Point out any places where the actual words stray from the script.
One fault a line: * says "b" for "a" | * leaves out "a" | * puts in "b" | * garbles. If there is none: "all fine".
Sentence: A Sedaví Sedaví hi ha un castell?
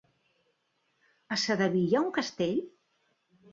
* leaves out "Sedaví"